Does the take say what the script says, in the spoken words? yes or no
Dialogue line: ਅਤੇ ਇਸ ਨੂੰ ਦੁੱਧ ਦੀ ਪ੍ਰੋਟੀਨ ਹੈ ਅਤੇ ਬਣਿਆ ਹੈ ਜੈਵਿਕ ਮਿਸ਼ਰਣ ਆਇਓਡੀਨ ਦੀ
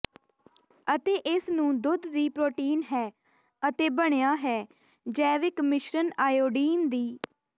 yes